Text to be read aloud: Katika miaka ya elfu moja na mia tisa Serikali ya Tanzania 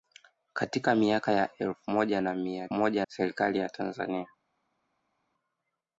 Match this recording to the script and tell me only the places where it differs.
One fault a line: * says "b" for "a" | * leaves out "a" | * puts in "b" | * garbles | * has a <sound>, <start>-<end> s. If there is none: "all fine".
* says "moja" for "tisa"